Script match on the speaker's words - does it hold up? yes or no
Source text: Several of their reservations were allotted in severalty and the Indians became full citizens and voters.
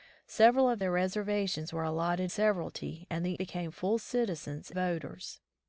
no